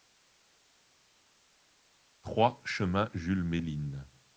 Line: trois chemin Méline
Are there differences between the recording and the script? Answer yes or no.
yes